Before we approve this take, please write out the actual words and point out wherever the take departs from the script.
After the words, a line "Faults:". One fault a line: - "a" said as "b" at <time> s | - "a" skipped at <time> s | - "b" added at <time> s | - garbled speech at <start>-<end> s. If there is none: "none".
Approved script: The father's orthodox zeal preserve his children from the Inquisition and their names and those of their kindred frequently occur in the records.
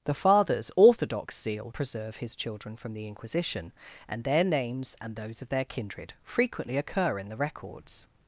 The father's orthodox zeal preserve his children from the Inquisition and their names and those of their kindred frequently occur in the records.
Faults:
none